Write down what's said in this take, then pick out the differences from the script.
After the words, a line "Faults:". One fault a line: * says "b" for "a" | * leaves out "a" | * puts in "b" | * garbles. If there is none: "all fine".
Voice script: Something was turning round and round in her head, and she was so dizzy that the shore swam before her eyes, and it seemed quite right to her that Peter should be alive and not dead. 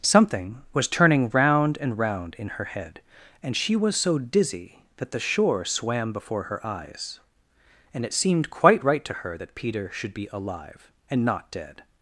Something was turning round and round in her head, and she was so dizzy that the shore swam before her eyes, and it seemed quite right to her that Peter should be alive and not dead.
Faults:
all fine